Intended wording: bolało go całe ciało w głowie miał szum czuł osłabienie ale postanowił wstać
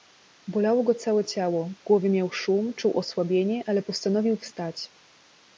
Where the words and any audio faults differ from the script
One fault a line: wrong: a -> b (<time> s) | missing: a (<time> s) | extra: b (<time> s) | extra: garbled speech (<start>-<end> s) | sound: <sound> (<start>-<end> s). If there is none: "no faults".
no faults